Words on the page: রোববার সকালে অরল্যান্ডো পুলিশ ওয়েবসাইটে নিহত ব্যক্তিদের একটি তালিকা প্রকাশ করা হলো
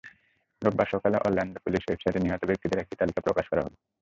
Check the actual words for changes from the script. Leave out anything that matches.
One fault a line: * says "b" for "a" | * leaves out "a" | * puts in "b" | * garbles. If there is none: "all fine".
all fine